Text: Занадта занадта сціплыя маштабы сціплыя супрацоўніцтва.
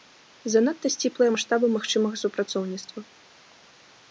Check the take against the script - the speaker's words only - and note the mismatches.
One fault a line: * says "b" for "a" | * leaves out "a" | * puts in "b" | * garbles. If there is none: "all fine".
* leaves out "занадта"
* says "магчымага" for "сціплыя"